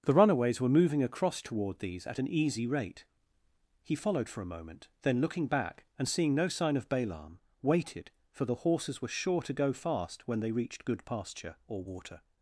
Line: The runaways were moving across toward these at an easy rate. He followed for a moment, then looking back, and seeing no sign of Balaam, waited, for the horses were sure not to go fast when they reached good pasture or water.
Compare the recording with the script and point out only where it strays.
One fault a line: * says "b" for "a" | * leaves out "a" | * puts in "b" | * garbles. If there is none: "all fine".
* leaves out "not"